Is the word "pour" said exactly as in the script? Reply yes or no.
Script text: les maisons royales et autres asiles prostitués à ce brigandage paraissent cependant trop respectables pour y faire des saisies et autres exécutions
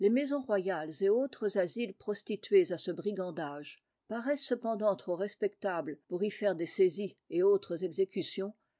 yes